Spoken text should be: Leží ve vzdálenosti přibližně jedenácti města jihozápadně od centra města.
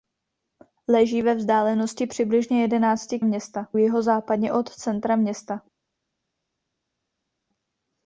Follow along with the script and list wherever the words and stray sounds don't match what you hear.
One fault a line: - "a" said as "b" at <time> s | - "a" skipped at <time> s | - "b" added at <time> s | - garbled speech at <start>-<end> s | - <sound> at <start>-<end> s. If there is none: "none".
none